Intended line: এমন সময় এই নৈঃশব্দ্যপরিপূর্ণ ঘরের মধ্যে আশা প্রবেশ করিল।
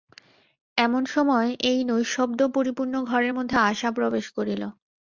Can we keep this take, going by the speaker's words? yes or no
yes